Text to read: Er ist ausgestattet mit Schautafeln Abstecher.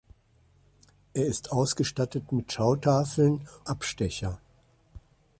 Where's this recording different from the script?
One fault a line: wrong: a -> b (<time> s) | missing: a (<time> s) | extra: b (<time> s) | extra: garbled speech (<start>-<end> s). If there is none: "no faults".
no faults